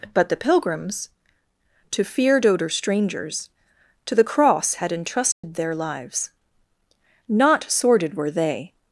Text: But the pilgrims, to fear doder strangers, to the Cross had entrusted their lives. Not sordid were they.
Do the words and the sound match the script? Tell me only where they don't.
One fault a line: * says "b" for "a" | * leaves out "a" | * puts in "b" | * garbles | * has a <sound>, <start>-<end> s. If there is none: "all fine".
* has a dropout, 5.3-5.4 s